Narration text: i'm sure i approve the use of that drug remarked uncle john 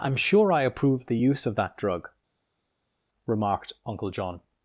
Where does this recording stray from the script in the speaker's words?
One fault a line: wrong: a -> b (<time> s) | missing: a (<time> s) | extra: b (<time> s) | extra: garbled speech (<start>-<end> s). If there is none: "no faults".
no faults